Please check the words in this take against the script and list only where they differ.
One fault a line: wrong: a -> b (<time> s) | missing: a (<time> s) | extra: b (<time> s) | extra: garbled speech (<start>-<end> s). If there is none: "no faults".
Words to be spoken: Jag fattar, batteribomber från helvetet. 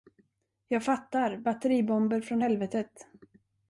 no faults